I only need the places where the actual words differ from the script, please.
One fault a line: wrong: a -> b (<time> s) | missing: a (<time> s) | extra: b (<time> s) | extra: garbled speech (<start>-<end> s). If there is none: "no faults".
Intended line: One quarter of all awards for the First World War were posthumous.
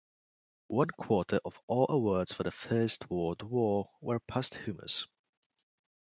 no faults